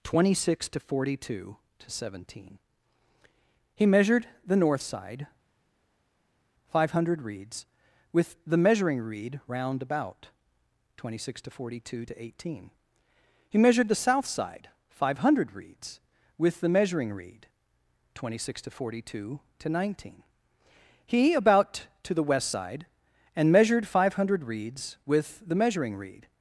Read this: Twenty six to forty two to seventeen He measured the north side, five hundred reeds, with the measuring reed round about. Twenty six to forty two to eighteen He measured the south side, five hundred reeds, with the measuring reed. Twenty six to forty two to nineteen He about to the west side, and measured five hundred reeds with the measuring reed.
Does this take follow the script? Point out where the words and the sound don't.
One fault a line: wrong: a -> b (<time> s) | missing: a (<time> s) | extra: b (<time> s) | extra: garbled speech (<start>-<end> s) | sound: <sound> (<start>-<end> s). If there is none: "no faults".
no faults